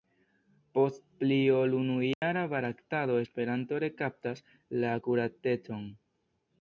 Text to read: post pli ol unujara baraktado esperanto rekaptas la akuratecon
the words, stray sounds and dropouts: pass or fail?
fail